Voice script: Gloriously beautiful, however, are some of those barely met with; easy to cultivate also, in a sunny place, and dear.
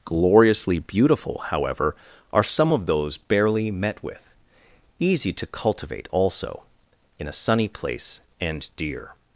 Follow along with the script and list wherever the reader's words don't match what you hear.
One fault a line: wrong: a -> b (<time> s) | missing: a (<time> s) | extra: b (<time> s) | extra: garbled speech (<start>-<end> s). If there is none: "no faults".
no faults